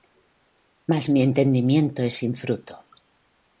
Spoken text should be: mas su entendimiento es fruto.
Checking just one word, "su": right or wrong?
wrong